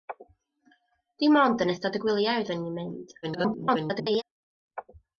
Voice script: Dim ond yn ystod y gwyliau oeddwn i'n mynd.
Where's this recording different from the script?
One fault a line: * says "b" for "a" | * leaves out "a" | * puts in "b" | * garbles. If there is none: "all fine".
* garbles